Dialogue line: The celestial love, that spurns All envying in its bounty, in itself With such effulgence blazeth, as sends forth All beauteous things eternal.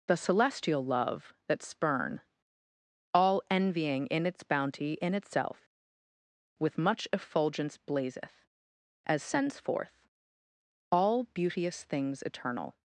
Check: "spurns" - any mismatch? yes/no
yes